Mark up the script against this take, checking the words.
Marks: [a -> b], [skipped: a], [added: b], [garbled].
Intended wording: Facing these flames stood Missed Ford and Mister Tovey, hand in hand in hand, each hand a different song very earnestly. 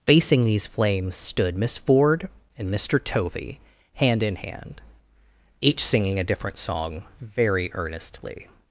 Facing these flames stood [Missed -> Miss] Ford and Mister Tovey, hand in hand [skipped: in hand,] each [hand -> singing] a different song very earnestly.